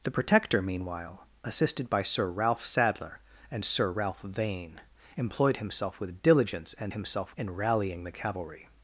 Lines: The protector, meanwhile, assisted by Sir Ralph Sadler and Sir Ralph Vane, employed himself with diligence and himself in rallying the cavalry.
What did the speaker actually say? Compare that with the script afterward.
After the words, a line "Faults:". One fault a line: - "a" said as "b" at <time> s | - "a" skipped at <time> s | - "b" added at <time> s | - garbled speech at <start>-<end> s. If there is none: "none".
The protector, meanwhile, assisted by Sir Ralph Sadler and Sir Ralph Vane, employed himself with diligence and himself in rallying the cavalry.
Faults:
none